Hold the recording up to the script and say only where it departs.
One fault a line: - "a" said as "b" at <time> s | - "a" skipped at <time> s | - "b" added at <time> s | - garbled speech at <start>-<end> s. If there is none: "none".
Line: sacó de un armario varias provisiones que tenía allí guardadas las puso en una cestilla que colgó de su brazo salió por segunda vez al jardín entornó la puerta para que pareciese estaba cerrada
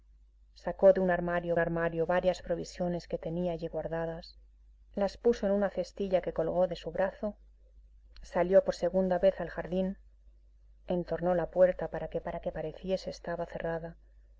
- "armario" added at 1.6 s
- "para que" added at 12.2 s